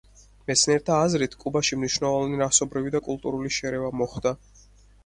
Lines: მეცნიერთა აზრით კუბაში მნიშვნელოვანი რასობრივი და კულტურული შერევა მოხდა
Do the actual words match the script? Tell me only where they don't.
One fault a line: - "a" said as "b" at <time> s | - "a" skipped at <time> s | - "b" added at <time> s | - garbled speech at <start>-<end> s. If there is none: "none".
none